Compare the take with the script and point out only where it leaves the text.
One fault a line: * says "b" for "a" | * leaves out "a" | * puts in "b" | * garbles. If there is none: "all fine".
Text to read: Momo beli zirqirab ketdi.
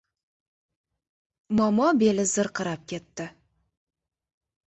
all fine